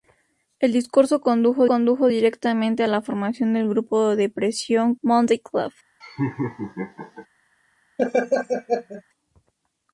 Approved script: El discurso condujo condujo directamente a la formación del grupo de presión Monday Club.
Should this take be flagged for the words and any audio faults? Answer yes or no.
yes